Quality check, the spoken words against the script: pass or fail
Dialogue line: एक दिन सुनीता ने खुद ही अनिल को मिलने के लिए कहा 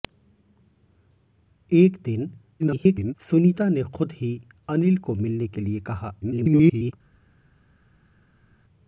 fail